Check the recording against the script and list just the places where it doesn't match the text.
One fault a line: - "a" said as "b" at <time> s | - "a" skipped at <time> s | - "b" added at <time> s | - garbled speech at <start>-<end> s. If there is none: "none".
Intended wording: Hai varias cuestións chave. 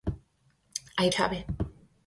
- "varias cuestións" skipped at 1.1 s